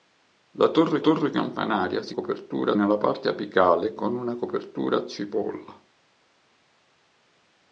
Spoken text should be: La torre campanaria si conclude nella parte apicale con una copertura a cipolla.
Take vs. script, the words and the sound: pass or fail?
fail